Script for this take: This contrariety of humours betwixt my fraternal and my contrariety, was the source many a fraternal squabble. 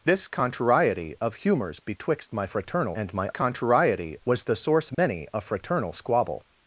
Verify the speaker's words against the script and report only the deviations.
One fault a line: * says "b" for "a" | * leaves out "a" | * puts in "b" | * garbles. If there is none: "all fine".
all fine